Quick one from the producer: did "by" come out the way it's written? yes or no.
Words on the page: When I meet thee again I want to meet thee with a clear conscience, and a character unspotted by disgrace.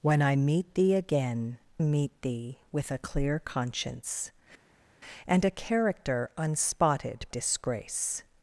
no